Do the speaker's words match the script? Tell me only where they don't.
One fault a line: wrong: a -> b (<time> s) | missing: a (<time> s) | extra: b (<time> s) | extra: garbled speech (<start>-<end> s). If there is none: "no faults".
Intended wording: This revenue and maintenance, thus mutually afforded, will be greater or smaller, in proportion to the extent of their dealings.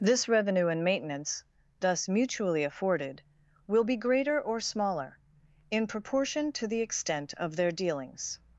no faults